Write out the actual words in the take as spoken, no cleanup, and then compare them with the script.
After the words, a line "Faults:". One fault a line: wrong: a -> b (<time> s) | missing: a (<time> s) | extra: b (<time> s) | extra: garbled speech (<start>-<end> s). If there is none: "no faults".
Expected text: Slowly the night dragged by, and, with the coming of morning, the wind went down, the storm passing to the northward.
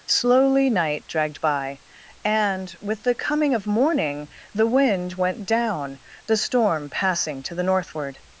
Slowly night dragged by, and, with the coming of morning, the wind went down, the storm passing to the northward.
Faults:
missing: the (0.7 s)